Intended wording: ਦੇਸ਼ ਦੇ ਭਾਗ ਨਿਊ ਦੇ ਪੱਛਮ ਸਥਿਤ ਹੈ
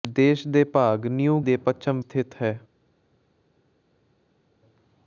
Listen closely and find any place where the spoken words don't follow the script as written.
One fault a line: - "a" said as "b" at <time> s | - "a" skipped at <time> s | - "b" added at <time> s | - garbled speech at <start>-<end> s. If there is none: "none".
none